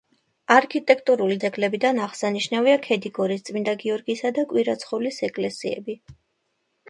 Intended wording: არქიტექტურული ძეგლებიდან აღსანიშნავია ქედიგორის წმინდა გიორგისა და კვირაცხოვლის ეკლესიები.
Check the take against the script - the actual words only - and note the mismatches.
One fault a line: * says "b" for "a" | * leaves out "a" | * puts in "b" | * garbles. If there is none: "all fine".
all fine